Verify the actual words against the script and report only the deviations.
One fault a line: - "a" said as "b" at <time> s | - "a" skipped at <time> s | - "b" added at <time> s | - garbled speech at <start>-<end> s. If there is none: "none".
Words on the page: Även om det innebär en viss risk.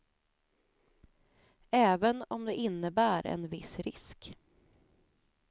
none